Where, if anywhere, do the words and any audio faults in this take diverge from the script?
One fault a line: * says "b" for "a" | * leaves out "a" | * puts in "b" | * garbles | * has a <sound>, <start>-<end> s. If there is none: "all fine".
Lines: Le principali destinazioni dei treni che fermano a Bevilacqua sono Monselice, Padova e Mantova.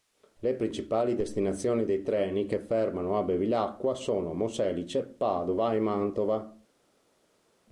all fine